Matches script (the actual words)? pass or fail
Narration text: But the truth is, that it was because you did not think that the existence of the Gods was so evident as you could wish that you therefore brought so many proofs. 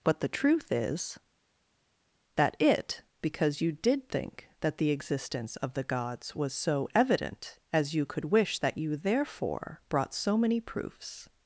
fail